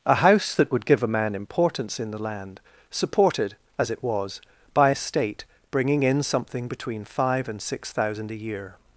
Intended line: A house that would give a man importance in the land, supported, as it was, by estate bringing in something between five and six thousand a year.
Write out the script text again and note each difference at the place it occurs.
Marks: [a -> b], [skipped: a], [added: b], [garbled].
A house that would give a man importance in the land, supported, as it was, by estate bringing in something between five and six thousand a year.